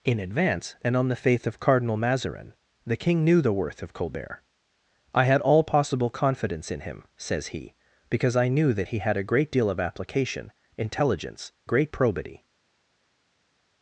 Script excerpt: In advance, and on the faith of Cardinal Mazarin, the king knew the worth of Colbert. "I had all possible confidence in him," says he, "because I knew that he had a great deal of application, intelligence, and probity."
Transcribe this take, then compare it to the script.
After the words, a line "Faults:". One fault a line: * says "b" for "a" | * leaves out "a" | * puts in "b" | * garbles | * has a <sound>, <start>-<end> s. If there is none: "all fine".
In advance, and on the faith of Cardinal Mazarin, the king knew the worth of Colbert. "I had all possible confidence in him," says he, "because I knew that he had a great deal of application, intelligence, great probity."
Faults:
* says "great" for "and"